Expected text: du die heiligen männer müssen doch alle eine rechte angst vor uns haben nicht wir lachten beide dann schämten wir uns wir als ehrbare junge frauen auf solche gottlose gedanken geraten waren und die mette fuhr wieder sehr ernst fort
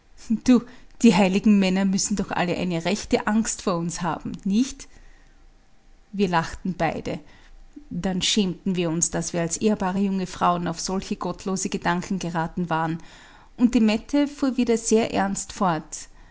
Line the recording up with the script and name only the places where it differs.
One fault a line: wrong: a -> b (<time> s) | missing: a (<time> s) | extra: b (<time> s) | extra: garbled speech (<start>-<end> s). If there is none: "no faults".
extra: daß (9.1 s)